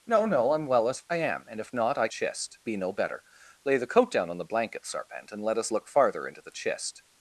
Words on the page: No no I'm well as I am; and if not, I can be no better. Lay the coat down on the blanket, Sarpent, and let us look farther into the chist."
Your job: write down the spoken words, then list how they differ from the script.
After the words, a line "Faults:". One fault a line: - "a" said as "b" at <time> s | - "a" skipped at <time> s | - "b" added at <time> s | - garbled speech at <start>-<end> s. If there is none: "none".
No no I'm well as I am; and if not, I chist be no better. Lay the coat down on the blanket, Sarpent, and let us look farther into the chist."
Faults:
- "can" said as "chist" at 2.1 s